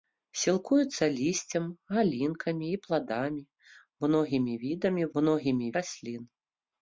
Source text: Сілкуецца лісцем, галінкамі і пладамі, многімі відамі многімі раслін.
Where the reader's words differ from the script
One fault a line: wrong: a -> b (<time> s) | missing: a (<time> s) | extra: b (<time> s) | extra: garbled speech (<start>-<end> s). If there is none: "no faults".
no faults